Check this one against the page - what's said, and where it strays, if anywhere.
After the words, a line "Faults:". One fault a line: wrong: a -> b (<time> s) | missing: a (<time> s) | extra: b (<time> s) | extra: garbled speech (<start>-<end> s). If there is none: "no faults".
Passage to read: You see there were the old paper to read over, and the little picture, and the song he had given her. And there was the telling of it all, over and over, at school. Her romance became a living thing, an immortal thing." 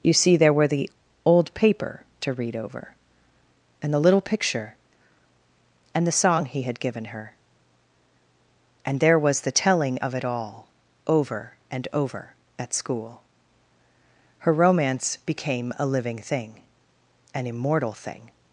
You see there were the old paper to read over, and the little picture, and the song he had given her. And there was the telling of it all, over and over, at school. Her romance became a living thing, an immortal thing."
Faults:
no faults